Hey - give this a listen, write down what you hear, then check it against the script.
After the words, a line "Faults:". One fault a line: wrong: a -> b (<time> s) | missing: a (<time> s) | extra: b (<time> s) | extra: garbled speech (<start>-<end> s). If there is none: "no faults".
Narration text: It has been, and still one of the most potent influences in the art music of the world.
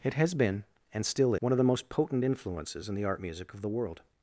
It has been, and still one of the most potent influences in the art music of the world.
Faults:
no faults